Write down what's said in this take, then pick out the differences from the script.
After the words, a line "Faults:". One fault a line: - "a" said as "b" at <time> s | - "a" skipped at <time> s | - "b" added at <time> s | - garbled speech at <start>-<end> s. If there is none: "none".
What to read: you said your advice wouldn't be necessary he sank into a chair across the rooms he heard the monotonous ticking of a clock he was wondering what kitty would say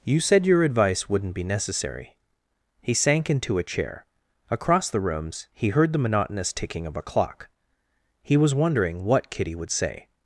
you said your advice wouldn't be necessary he sank into a chair across the rooms he heard the monotonous ticking of a clock he was wondering what kitty would say
Faults:
none